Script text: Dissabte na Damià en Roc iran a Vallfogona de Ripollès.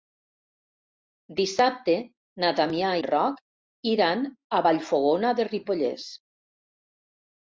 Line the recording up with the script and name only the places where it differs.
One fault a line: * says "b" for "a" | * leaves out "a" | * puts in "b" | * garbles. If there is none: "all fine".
all fine